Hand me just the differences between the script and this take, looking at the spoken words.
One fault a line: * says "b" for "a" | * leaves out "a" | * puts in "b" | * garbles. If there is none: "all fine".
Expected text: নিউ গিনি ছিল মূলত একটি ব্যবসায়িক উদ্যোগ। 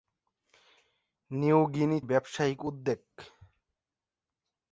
* leaves out "ছিল মূলত একটি"